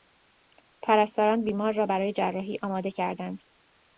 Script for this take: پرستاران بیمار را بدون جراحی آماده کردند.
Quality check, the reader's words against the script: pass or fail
fail